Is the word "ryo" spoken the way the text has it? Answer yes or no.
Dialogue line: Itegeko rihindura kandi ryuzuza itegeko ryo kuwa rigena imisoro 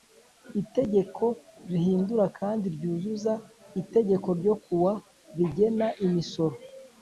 yes